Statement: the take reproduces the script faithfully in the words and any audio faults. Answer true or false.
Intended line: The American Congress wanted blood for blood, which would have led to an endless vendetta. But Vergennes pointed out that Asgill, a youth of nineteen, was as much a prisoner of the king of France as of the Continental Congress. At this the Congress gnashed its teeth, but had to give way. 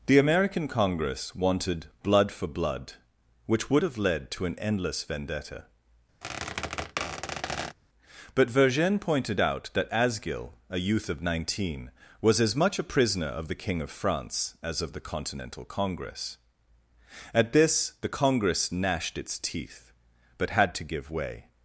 false